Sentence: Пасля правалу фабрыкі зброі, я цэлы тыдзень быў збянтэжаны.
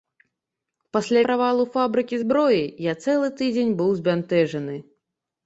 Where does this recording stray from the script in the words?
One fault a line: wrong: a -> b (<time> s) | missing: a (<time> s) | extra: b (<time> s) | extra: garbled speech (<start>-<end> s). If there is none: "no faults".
no faults